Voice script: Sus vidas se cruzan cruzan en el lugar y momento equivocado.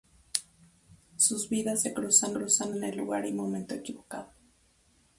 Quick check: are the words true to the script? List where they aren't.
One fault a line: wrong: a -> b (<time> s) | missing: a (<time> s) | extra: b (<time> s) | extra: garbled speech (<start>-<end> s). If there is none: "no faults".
no faults